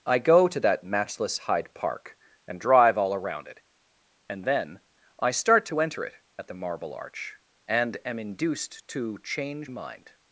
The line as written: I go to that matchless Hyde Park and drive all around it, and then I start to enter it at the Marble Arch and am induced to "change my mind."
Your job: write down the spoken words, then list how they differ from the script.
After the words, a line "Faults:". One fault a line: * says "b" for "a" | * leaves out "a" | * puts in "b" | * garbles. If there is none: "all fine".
I go to that matchless Hyde Park and drive all around it, and then I start to enter it at the Marble Arch and am induced to "change mind."
Faults:
* leaves out "my"